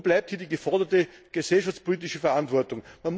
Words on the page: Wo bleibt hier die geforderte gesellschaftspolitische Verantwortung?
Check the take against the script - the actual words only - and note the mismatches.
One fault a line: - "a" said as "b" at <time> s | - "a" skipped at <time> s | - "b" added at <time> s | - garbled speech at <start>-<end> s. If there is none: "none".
none